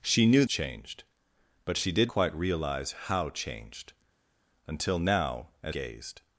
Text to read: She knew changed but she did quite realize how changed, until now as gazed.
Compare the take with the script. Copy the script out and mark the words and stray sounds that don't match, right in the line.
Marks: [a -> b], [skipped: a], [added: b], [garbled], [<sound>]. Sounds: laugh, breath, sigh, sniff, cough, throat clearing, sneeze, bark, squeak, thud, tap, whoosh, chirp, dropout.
She knew changed but she did quite realize how changed, until now as gazed.